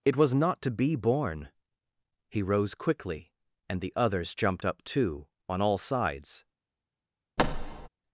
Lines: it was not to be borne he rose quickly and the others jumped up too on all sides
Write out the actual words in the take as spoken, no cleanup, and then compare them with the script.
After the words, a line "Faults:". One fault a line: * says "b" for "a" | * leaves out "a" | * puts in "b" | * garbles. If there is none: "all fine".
it was not to be borne he rose quickly and the others jumped up too on all sides
Faults:
all fine